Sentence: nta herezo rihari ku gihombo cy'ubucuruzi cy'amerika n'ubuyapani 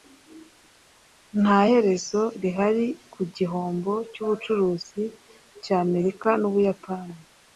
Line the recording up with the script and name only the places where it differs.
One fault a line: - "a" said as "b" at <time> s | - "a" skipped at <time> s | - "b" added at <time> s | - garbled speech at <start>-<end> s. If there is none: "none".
none